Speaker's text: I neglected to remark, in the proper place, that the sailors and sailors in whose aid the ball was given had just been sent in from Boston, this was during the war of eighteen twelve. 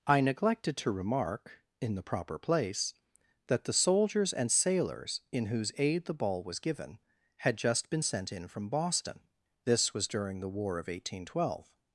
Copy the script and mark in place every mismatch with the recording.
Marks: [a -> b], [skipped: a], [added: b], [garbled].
I neglected to remark, in the proper place, that the [sailors -> soldiers] and sailors in whose aid the ball was given had just been sent in from Boston, this was during the war of eighteen twelve.